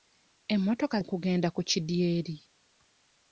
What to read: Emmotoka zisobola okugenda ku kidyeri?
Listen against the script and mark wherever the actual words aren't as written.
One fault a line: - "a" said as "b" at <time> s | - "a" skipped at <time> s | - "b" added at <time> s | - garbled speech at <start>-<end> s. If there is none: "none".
- "zisobola" skipped at 1.0 s